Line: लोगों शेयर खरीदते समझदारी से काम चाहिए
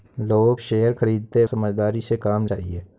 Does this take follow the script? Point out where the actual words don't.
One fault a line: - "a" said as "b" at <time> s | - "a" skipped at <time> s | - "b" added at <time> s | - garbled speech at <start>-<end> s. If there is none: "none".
none